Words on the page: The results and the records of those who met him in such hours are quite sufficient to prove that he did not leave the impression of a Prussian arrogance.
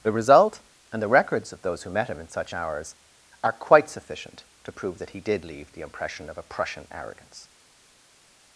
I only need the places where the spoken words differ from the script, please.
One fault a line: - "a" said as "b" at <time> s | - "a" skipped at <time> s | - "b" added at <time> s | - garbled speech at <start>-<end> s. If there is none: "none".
- "results" said as "result" at 0.1 s
- "not" skipped at 5.4 s